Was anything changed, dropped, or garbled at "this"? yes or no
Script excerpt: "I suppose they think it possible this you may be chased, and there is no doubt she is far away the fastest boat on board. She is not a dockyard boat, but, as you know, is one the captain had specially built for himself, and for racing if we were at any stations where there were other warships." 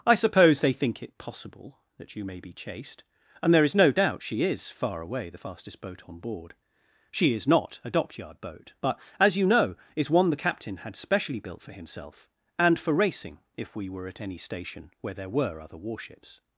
yes